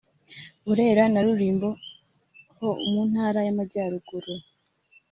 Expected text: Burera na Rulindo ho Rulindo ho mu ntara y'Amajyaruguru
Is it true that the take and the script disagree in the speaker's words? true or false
true